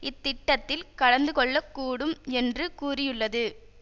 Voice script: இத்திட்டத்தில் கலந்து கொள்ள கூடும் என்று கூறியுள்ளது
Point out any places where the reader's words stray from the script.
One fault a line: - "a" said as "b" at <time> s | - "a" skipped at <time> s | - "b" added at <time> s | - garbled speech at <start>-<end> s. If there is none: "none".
none